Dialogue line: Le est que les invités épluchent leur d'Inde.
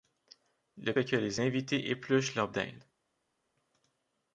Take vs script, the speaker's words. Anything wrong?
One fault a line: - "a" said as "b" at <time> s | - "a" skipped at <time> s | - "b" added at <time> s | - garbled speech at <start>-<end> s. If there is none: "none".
none